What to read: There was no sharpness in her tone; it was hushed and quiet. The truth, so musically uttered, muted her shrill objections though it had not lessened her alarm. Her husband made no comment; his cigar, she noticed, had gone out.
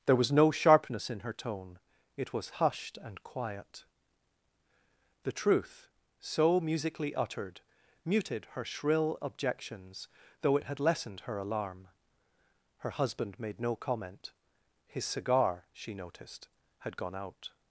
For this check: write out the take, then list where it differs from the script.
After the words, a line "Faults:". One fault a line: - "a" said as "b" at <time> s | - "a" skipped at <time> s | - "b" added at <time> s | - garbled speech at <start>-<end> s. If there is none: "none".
There was no sharpness in her tone; it was hushed and quiet. The truth, so musically uttered, muted her shrill objections though it had lessened her alarm. Her husband made no comment; his cigar, she noticed, had gone out.
Faults:
- "not" skipped at 10.8 s